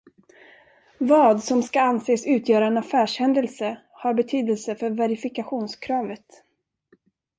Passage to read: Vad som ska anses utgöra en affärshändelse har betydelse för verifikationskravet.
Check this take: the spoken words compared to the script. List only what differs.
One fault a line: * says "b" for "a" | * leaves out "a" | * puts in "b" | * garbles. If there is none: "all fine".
all fine